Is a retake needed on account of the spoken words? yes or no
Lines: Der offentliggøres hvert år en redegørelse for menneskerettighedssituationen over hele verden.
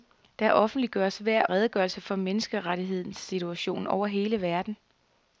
yes